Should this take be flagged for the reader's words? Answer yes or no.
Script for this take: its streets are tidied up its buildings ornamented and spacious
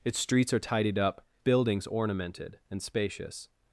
yes